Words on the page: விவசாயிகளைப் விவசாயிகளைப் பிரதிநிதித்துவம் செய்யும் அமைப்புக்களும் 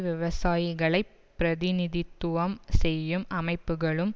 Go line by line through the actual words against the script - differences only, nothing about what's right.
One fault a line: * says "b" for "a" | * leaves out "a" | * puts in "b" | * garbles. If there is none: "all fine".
* leaves out "விவசாயிகளைப்"